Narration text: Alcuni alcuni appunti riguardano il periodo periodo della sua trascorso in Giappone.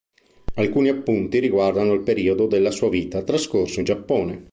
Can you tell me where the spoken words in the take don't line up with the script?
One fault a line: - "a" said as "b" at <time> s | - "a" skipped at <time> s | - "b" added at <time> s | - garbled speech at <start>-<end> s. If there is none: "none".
- "alcuni" skipped at 0.9 s
- "periodo" skipped at 2.5 s
- "vita" added at 2.9 s